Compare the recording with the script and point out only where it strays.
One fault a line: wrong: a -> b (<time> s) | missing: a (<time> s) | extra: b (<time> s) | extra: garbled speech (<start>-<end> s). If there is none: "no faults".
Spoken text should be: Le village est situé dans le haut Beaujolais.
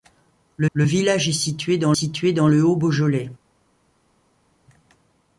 extra: le (0.7 s)
extra: situé dans (1.9 s)